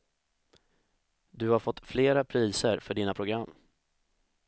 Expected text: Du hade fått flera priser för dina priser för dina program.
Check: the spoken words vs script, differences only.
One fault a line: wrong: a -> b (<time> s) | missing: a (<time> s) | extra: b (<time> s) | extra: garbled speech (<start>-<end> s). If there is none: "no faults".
wrong: hade -> har (1.5 s)
missing: priser för dina (3.1 s)